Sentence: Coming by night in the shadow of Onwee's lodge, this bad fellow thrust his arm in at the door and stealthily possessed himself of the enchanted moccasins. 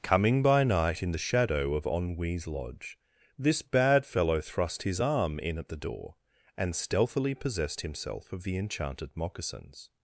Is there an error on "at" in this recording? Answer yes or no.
no